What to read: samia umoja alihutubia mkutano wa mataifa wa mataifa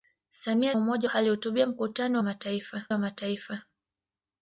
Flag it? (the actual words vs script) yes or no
no